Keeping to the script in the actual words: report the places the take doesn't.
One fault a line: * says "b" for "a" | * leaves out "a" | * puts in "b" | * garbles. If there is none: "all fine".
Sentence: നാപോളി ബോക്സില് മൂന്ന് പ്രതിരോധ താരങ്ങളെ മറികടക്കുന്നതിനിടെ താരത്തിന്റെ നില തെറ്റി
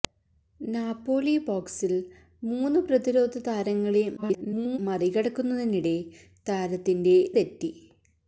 * garbles
* leaves out "നില"